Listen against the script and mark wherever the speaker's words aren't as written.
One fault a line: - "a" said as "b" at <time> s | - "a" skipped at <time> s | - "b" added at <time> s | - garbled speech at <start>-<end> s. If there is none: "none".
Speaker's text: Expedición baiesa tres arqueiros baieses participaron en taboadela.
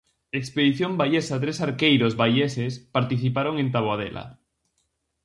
none